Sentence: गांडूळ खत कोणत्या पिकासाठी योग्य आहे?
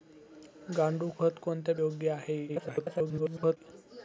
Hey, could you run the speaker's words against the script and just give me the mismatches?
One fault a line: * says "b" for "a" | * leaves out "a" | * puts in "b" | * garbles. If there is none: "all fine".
* leaves out "पिकासाठी"
* garbles